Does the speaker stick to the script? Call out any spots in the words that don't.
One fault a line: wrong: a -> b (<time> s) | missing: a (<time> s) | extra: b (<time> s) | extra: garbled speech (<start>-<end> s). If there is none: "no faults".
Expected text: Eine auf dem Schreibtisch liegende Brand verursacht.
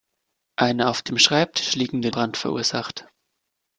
no faults